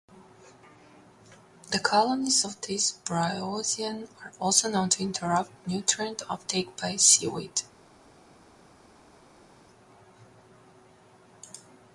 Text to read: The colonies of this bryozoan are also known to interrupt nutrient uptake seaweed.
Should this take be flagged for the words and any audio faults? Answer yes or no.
yes